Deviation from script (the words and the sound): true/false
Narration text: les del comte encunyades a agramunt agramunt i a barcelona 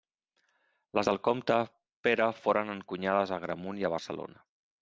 true